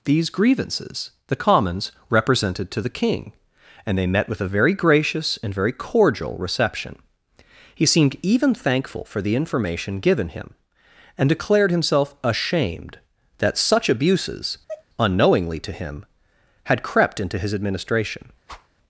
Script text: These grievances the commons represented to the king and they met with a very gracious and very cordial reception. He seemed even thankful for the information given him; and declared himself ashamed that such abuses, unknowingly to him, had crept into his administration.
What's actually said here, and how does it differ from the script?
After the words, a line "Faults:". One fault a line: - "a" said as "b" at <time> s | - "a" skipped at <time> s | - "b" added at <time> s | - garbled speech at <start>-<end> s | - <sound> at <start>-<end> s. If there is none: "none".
These grievances the commons represented to the king and they met with a very gracious and very cordial reception. He seemed even thankful for the information given him; and declared himself ashamed that such abuses, unknowingly to him, had crept into his administration.
Faults:
- sneeze at 14.7-14.8 s
- whoosh at 18.5-18.7 s